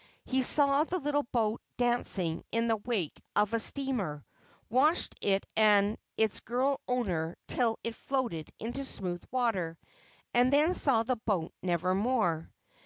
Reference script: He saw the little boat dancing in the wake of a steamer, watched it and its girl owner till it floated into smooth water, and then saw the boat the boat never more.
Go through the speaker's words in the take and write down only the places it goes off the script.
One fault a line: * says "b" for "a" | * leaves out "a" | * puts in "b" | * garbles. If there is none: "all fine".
* leaves out "the boat"